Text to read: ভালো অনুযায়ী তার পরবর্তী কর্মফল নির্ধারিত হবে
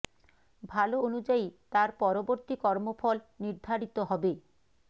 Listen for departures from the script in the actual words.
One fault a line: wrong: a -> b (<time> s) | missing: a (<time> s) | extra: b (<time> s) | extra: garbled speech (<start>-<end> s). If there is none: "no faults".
no faults